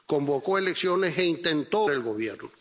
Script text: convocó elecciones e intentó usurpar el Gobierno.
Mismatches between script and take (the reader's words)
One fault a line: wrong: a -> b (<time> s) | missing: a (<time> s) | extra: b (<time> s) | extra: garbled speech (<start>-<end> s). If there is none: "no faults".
missing: usurpar (1.8 s)